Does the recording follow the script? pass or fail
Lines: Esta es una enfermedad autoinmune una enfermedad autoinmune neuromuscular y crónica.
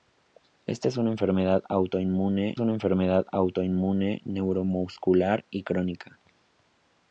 pass